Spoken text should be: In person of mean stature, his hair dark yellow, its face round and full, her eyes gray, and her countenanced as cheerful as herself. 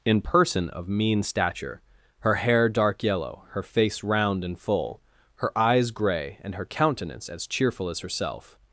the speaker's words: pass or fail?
fail